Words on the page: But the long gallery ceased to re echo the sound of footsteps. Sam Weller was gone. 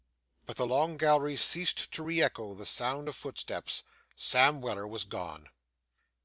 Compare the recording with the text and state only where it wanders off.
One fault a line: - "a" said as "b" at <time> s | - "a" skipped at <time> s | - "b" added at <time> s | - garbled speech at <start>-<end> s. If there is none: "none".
none